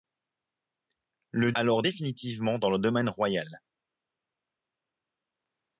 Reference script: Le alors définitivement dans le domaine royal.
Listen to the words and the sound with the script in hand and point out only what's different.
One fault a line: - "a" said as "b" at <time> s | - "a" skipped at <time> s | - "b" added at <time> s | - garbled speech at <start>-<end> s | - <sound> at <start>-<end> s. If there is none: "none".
none